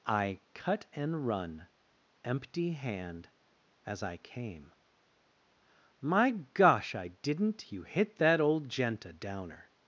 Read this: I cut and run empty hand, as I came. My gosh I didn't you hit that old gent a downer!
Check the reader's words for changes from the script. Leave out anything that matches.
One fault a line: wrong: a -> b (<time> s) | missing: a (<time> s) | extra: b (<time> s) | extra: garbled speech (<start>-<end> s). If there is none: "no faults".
no faults